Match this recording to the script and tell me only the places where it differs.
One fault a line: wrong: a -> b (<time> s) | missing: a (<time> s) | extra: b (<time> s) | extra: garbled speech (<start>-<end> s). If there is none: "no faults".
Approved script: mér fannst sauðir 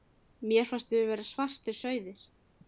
extra: við vera svartir (0.9 s)